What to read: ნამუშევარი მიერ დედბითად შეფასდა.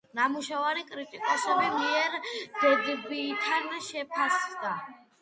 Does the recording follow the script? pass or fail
fail